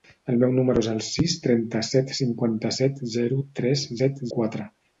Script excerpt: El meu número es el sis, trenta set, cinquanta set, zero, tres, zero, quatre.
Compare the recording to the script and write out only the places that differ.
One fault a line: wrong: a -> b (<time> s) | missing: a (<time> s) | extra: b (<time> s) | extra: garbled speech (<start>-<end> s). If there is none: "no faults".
wrong: zero -> set (4.0 s)